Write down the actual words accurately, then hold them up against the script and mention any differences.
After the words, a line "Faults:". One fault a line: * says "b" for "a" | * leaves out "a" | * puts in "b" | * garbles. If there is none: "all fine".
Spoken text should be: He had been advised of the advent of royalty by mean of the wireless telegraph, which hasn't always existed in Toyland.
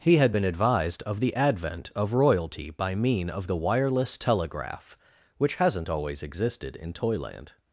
He had been advised of the advent of royalty by mean of the wireless telegraph, which hasn't always existed in Toyland.
Faults:
all fine